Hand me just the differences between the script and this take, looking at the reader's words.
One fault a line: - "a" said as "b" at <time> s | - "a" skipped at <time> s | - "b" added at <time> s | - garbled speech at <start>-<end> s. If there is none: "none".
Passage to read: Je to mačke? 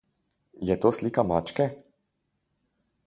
- "slika" added at 0.9 s